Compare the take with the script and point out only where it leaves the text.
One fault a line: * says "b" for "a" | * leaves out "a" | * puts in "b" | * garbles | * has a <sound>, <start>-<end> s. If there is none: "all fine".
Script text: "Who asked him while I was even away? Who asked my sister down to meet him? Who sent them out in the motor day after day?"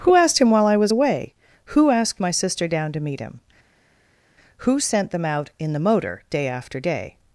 * leaves out "even"